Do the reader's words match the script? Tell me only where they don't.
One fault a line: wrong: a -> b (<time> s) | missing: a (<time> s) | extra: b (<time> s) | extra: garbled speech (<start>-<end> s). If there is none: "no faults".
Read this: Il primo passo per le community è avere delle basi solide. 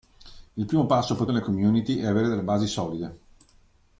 no faults